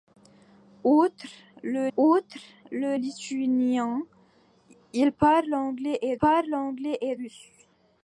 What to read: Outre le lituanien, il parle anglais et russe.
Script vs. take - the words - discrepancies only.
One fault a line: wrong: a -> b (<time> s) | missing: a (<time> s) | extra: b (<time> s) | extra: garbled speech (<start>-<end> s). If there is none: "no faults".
extra: outre le (2.0 s)
extra: parle anglais et (6.1 s)